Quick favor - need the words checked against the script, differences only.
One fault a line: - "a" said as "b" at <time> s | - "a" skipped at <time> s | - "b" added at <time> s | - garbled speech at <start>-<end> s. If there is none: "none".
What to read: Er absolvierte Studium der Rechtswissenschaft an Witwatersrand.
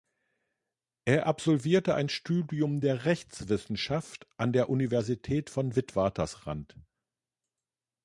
- "ein" added at 1.9 s
- "der Universität von" added at 4.5 s